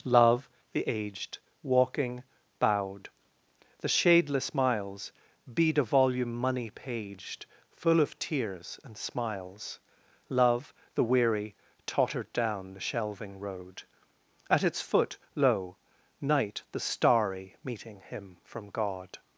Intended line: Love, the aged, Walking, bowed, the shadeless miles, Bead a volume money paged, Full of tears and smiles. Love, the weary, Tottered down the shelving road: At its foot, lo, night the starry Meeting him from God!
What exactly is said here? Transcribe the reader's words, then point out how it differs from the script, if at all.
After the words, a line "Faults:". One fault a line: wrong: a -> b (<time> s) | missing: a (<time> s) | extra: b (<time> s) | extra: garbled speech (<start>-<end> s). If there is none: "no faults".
Love, the aged, Walking, bowed, the shadeless miles, Bead a volume money paged, Full of tears and smiles. Love, the weary, Tottered down the shelving road: At its foot, lo, night the starry Meeting him from God!
Faults:
no faults